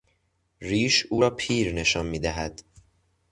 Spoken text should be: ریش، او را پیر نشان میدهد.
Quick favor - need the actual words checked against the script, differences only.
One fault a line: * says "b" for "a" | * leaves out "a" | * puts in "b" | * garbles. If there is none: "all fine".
all fine